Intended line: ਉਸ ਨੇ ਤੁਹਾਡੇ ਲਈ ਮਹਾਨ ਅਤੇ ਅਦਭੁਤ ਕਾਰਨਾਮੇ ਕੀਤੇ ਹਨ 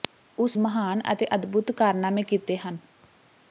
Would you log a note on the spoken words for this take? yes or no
yes